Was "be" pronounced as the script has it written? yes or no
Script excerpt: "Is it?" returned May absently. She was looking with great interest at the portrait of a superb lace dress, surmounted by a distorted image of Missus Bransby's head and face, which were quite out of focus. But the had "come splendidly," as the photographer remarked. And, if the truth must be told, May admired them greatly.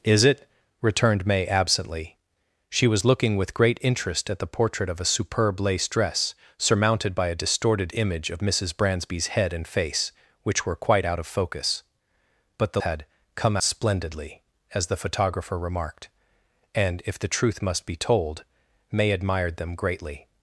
yes